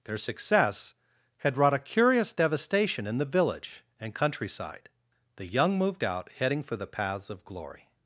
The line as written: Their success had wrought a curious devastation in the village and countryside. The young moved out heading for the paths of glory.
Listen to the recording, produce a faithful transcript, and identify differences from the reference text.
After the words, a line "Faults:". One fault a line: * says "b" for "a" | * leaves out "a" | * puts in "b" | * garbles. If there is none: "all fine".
Their success had wrought a curious devastation in the village and countryside. The young moved out heading for the paths of glory.
Faults:
all fine